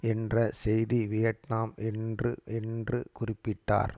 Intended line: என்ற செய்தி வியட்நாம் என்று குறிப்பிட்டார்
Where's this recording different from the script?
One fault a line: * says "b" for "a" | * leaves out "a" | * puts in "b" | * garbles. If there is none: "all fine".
* puts in "என்று"